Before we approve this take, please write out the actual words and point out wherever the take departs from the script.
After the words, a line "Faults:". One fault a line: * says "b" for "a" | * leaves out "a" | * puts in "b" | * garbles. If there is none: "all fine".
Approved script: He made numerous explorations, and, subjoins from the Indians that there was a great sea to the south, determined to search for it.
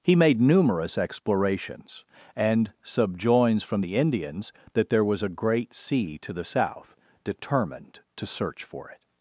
He made numerous explorations, and, subjoins from the Indians that there was a great sea to the south, determined to search for it.
Faults:
all fine